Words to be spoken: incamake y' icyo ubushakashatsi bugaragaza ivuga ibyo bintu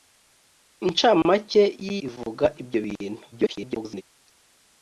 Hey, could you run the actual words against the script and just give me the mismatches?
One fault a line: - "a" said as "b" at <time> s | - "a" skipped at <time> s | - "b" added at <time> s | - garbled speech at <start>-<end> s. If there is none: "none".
- "icyo ubushakashatsi bugaragaza" skipped at 1.9 s
- garbled speech at 3.3-4.0 s